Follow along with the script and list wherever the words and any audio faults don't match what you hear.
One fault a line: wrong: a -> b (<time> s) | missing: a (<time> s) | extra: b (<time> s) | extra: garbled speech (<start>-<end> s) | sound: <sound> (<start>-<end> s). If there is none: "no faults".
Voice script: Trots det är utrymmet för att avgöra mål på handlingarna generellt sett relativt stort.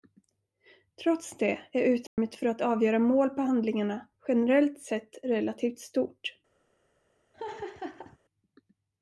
sound: dropout (2.1-2.2 s)
sound: laugh (7.3-8.2 s)